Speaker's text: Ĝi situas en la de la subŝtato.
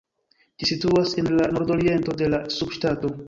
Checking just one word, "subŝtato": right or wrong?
right